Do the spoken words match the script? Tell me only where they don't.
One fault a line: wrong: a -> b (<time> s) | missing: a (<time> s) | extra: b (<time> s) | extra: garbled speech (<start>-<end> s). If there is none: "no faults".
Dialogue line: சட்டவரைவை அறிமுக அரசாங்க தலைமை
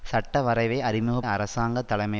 no faults